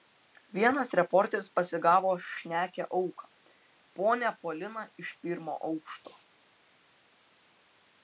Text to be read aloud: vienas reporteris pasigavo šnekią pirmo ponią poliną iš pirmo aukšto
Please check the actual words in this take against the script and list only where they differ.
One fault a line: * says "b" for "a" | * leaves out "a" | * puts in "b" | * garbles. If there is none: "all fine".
* says "auką" for "pirmo"